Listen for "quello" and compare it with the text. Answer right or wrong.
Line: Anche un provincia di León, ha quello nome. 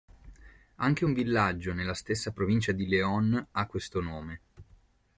wrong